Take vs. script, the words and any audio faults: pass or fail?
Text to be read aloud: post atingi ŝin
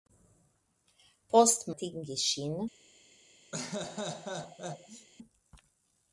fail